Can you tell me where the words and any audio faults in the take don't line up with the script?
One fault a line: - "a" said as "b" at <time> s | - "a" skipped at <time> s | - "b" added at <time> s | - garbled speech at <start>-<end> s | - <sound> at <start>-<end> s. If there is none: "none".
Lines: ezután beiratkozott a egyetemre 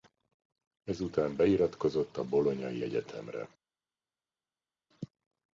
- "bolognai" added at 2.2 s